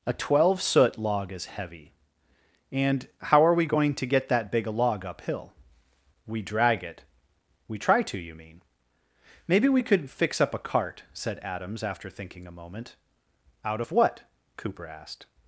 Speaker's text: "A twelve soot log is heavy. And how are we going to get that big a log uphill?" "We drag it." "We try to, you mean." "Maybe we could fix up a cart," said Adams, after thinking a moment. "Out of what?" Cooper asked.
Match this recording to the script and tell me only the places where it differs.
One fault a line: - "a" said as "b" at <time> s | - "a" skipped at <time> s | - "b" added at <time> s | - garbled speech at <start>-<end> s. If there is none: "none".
none